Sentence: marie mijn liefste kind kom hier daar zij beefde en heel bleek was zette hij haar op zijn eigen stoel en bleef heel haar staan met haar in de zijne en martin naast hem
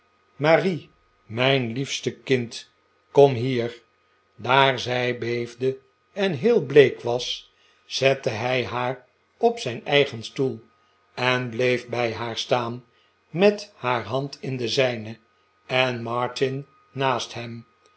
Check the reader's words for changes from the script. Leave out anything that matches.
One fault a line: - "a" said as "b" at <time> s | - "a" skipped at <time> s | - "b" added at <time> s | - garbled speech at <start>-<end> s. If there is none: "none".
- "heel" said as "bij" at 11.9 s
- "hand" added at 14.0 s